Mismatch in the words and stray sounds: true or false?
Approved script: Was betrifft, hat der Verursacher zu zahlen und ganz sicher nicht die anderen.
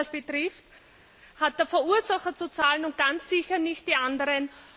false